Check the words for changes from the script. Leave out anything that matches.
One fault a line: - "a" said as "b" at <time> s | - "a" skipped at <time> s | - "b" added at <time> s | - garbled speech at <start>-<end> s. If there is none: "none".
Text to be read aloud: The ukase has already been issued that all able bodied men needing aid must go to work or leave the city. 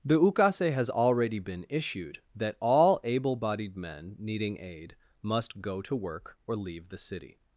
none